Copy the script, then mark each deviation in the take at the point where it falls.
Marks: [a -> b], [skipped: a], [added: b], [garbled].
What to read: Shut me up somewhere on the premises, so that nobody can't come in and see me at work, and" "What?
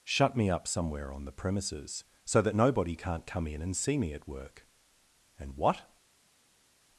Shut me up somewhere on the premises, so that nobody can't come in and see me at work, and" "What?